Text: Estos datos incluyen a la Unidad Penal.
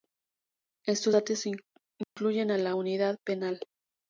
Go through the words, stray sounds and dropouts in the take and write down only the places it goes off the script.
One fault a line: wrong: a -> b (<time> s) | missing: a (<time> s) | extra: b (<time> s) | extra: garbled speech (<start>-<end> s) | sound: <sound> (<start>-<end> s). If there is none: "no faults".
sound: dropout (2.0-2.2 s)